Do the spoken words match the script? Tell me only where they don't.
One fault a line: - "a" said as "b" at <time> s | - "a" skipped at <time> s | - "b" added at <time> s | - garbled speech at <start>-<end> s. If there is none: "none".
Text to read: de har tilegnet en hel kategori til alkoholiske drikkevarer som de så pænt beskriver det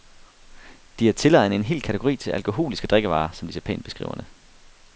none